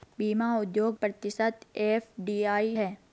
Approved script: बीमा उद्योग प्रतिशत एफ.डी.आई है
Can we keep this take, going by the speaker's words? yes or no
yes